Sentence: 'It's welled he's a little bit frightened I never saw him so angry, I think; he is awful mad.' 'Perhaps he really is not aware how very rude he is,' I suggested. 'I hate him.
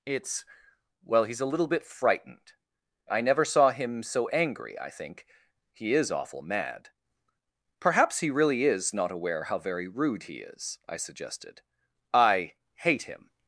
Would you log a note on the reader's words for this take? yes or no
yes